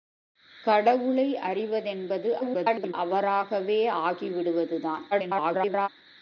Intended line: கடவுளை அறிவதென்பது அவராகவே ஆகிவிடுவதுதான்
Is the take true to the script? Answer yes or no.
no